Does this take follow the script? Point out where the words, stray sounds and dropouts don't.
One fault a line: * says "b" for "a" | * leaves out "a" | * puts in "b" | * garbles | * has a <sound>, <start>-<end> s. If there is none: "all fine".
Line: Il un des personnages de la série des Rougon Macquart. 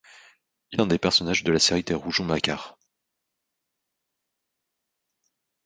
all fine